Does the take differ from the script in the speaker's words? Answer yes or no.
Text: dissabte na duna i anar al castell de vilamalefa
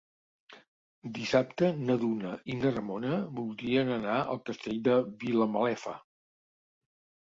yes